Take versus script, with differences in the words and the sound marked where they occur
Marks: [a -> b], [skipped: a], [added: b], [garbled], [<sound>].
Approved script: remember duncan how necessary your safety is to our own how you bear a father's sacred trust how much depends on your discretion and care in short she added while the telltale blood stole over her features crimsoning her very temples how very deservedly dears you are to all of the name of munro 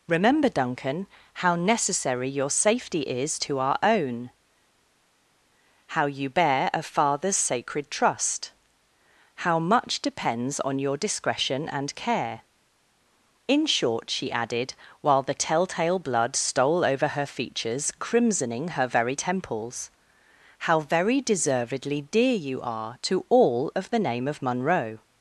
remember duncan how necessary your safety is to our own how you bear a father's sacred trust how much depends on your discretion and care in short she added while the telltale blood stole over her features crimsoning her very temples how very deservedly [dears -> dear] you are to all of the name of munro